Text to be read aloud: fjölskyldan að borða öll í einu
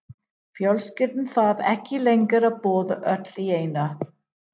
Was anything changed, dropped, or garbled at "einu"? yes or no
no